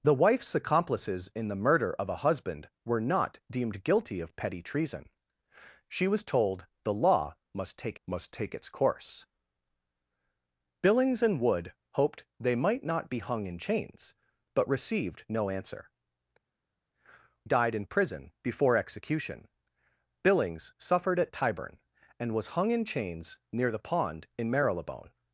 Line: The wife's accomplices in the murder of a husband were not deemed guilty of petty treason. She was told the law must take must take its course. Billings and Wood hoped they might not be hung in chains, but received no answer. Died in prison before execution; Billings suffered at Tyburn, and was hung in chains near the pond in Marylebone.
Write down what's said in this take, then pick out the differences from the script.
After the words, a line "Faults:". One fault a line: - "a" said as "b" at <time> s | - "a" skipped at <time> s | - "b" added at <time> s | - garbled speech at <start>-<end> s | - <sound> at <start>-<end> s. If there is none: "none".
The wife's accomplices in the murder of a husband were not deemed guilty of petty treason. She was told the law must take must take its course. Billings and Wood hoped they might not be hung in chains, but received no answer. Died in prison before execution; Billings suffered at Tyburn, and was hung in chains near the pond in Marylebone.
Faults:
none